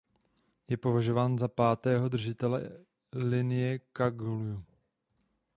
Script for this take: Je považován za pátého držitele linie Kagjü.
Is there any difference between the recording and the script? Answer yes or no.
no